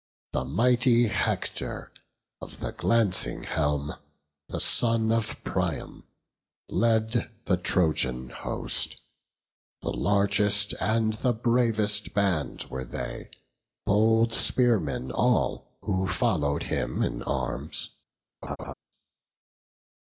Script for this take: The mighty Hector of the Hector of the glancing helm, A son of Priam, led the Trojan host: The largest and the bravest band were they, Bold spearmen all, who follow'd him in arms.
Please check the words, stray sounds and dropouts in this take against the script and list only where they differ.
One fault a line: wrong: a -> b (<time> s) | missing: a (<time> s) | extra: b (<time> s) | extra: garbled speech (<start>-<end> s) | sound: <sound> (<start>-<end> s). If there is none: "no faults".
missing: Hector of the (2.7 s)
wrong: A -> The (4.5 s)
sound: laugh (18.4-18.7 s)